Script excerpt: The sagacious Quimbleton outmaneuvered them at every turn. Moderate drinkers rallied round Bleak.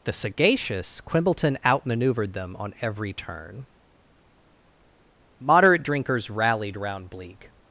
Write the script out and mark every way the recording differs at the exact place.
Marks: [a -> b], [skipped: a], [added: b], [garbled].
The sagacious Quimbleton outmaneuvered them [at -> on] every turn. Moderate drinkers rallied round Bleak.